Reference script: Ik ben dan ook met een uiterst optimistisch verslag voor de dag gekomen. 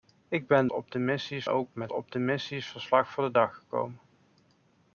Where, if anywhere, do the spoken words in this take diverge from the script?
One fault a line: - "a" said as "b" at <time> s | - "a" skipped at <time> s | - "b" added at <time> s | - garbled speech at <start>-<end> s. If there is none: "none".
- "dan" said as "optimistisch" at 0.7 s
- "een uiterst" skipped at 1.9 s